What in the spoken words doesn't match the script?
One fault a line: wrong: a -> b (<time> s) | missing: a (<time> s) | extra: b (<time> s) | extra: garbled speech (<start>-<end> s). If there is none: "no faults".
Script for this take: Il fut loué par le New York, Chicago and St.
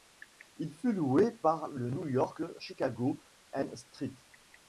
no faults